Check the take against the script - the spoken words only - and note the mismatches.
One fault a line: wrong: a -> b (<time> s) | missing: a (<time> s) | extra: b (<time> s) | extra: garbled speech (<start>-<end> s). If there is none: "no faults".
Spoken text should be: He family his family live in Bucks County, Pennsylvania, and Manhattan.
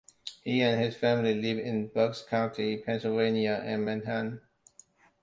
wrong: family -> and (0.6 s)